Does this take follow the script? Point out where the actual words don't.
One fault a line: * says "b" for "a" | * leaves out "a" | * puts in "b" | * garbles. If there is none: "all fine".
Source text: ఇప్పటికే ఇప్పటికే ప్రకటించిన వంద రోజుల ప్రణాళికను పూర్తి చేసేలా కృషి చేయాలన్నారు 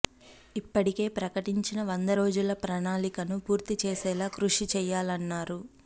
* leaves out "ఇప్పటికే"